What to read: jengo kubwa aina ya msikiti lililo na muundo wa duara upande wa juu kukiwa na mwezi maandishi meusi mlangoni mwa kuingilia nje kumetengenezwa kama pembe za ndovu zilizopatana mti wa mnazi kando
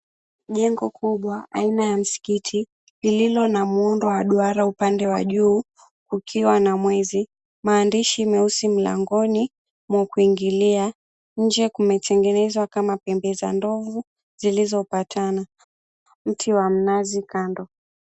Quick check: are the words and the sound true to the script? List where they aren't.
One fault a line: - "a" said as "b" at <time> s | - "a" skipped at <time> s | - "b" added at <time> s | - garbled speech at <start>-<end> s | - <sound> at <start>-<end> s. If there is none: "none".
none